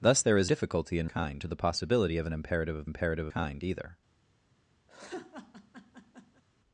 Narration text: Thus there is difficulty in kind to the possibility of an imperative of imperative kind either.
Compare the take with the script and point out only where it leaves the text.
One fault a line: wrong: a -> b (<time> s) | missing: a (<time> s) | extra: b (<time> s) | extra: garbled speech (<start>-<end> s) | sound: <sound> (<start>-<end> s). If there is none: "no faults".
sound: laugh (4.9-6.4 s)